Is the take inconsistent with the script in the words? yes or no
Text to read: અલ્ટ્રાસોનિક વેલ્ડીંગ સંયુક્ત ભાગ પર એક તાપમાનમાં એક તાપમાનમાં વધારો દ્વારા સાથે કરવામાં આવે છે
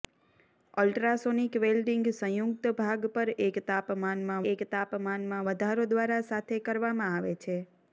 no